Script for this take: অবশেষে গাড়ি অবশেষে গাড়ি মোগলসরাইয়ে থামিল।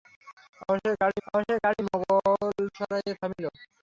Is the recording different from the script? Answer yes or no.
no